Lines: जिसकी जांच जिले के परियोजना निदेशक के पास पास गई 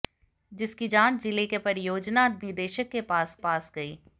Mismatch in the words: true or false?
false